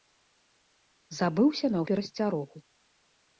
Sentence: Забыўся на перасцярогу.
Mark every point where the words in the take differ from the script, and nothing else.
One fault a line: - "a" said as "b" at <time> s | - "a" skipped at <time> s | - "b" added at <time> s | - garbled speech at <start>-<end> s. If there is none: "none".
none